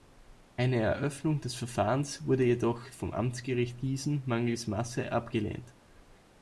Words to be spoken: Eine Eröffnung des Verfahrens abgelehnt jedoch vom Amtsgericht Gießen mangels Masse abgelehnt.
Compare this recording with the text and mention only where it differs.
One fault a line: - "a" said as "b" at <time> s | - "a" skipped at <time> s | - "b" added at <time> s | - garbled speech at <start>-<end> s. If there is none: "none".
- "abgelehnt" said as "wurde" at 2.2 s